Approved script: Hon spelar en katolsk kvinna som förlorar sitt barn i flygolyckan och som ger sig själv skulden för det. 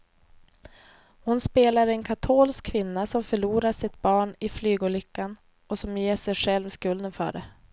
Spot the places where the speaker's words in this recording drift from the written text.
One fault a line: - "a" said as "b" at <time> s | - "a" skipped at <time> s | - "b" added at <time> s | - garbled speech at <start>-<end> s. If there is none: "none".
none